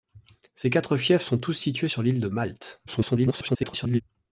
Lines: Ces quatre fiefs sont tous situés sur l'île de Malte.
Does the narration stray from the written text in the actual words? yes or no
yes